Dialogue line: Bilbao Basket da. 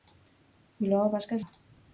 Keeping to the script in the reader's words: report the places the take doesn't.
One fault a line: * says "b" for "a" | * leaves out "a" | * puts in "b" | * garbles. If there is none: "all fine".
all fine